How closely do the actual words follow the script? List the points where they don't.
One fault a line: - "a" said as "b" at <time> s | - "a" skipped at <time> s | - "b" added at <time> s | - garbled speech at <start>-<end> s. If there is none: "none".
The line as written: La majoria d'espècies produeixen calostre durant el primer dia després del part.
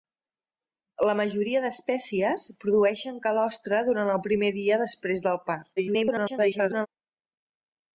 - garbled speech at 5.8-6.9 s